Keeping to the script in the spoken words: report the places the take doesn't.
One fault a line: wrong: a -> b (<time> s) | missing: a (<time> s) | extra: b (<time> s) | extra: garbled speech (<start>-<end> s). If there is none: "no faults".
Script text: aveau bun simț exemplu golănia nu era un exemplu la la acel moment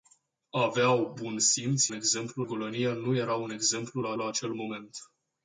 no faults